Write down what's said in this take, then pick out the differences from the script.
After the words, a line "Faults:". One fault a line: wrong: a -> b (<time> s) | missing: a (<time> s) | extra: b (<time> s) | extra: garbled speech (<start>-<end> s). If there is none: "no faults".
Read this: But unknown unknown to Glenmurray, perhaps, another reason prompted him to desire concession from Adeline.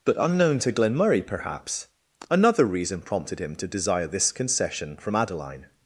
But unknown to Glenmurray, perhaps, another reason prompted him to desire this concession from Adeline.
Faults:
missing: unknown (0.6 s)
extra: this (4.1 s)